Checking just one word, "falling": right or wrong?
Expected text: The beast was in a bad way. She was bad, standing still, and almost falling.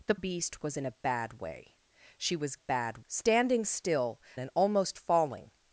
right